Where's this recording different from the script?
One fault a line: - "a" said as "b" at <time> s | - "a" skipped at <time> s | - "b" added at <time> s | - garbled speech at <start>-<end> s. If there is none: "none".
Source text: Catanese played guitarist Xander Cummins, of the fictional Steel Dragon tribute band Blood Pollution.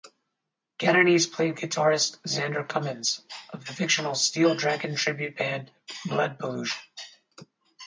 none